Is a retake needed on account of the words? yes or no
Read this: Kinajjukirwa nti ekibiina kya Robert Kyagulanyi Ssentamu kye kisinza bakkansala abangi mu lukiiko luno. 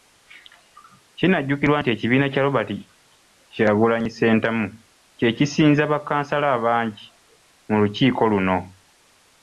no